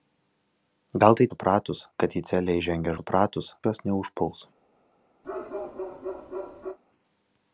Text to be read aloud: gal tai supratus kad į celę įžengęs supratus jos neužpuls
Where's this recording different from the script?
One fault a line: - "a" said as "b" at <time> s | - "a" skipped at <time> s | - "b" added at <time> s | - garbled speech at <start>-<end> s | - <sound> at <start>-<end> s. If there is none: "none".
- bark at 5.2-6.8 s